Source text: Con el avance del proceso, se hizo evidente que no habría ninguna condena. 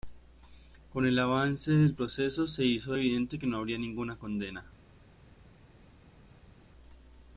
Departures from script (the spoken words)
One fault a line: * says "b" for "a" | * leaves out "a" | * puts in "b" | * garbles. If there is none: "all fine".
all fine